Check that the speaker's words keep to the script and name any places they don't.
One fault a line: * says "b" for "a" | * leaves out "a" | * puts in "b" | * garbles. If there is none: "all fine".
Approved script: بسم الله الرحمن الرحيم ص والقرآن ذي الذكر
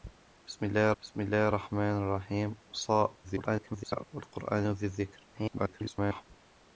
* puts in "بسم الله"
* garbles
* garbles